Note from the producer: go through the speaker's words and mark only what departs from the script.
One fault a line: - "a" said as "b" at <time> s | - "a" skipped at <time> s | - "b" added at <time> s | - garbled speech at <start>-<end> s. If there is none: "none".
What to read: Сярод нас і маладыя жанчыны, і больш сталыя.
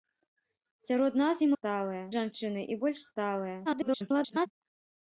- "маладыя" said as "сталыя" at 1.6 s
- garbled speech at 3.7-4.5 s